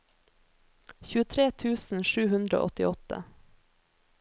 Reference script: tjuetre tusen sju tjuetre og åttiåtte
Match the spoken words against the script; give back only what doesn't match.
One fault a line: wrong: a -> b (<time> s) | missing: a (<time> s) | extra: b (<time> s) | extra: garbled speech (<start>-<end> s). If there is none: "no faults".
wrong: tjuetre -> hundre (2.4 s)